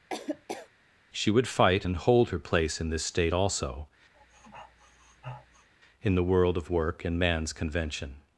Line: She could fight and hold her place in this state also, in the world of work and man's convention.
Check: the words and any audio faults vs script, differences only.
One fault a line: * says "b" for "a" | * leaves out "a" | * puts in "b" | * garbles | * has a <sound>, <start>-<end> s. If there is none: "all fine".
* has a laugh, 0.1-0.7 s
* says "would" for "could"
* has a sniff, 4.1-5.7 s